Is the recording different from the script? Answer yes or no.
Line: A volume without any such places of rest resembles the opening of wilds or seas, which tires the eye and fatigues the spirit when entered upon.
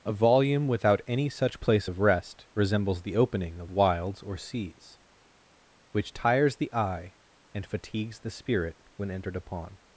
yes